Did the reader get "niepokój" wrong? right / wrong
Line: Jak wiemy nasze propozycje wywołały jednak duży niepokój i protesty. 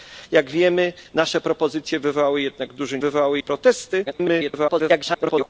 wrong